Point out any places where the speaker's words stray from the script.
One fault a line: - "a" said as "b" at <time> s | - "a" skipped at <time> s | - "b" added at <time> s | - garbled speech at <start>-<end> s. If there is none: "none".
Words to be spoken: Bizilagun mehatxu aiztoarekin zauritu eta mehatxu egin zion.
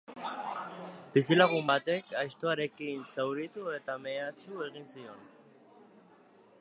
- "mehatxu" said as "batek" at 1.7 s